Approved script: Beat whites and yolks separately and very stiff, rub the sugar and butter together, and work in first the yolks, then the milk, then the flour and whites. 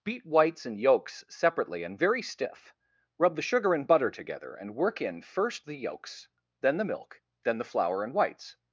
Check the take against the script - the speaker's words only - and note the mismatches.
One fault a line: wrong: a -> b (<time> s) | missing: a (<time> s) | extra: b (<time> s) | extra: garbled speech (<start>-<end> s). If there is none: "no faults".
no faults